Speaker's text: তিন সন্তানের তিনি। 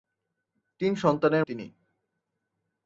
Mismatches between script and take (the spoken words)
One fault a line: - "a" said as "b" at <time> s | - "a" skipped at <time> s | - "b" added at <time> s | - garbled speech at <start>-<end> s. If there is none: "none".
none